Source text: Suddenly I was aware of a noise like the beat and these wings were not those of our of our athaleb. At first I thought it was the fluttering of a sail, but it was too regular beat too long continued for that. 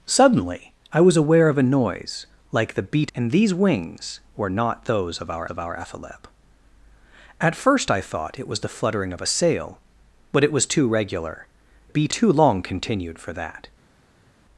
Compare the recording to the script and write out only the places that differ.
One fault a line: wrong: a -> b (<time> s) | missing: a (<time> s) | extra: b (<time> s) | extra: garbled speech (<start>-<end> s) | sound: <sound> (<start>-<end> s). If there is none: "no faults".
no faults